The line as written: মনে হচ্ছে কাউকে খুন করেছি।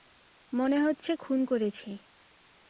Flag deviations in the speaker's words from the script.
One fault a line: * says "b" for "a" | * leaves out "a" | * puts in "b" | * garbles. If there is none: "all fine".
* leaves out "কাউকে"